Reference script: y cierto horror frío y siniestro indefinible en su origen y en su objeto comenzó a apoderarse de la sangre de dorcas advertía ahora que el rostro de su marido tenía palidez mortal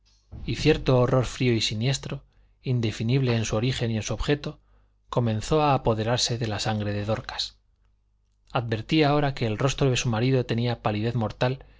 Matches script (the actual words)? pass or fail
pass